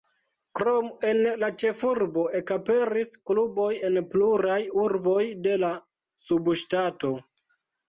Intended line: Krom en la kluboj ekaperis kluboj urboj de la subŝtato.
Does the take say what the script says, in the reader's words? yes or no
no